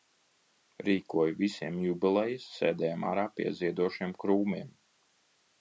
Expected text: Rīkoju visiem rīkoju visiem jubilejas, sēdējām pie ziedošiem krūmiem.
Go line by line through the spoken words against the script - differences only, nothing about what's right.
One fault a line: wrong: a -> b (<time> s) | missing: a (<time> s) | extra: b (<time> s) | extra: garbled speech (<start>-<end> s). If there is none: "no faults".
missing: rīkoju visiem (1.8 s)
extra: ārā (3.0 s)